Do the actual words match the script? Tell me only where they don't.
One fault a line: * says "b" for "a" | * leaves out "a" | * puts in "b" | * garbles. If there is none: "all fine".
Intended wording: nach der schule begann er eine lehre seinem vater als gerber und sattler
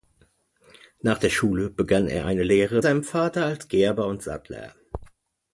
all fine